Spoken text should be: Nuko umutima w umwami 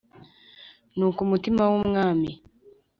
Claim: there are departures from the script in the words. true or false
false